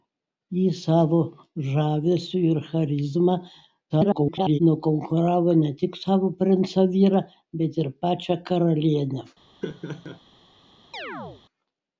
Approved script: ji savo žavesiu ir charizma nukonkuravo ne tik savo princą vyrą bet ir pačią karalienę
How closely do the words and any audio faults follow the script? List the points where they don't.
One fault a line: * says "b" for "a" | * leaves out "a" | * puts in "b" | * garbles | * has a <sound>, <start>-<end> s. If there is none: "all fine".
* garbles
* has a laugh, 9.6-10.2 s
* has a chirp, 10.9-11.4 s